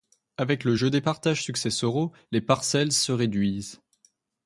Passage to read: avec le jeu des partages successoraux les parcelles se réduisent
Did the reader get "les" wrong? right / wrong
right